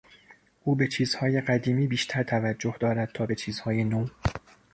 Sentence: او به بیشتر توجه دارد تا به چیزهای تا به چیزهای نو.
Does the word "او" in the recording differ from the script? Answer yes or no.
no